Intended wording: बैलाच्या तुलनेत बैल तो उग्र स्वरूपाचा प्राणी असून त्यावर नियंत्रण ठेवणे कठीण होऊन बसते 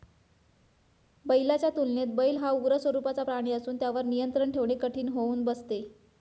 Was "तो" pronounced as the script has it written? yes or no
no